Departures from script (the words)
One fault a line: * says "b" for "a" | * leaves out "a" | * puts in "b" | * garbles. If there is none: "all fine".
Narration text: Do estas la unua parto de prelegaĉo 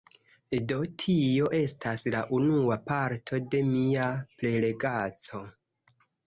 * puts in "tio"
* puts in "mia"